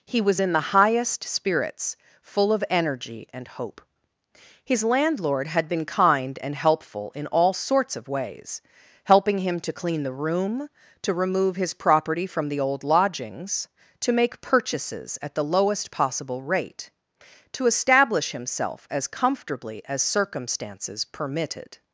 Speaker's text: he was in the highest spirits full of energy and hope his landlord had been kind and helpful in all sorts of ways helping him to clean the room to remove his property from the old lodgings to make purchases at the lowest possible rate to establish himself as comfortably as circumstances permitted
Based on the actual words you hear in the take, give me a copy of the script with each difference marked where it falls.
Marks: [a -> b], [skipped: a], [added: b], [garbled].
he was in the highest spirits full of energy and hope his landlord had been kind and helpful in all sorts of ways helping him to clean the room to remove his property from the old lodgings to make purchases at the lowest possible rate to establish himself as comfortably as circumstances permitted